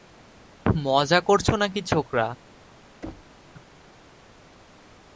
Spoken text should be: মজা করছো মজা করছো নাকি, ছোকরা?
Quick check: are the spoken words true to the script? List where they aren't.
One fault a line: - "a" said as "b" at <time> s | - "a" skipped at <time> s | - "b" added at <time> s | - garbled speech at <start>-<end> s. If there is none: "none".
- "মজা করছো" skipped at 1.5 s